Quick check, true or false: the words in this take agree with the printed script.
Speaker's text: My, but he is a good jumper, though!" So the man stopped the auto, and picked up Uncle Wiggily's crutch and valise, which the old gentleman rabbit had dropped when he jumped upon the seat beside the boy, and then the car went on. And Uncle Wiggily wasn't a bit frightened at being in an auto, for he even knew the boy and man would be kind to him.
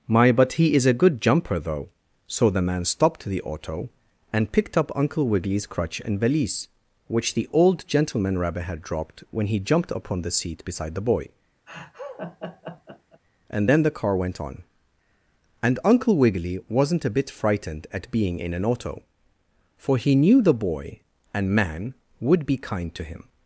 false